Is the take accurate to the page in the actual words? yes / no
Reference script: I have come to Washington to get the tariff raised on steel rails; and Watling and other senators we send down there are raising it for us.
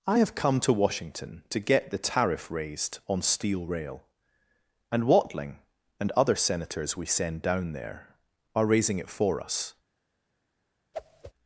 no